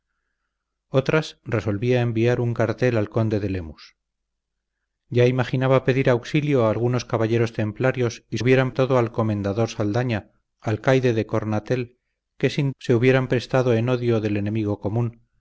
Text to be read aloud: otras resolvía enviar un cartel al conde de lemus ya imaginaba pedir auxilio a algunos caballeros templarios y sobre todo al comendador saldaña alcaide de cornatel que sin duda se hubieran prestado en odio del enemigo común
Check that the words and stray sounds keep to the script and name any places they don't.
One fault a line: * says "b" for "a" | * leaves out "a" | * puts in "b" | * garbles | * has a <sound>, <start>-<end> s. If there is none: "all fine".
* says "hubieran" for "sobre"
* leaves out "duda"